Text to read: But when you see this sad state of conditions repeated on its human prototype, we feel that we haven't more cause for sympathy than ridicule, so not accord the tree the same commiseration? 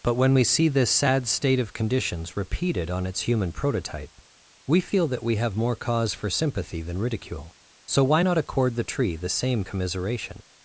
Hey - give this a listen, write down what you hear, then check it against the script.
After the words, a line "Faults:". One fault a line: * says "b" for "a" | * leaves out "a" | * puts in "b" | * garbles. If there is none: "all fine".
But when we see this sad state of conditions repeated on its human prototype, we feel that we have more cause for sympathy than ridicule, so why not accord the tree the same commiseration?
Faults:
* says "we" for "you"
* says "have" for "haven't"
* puts in "why"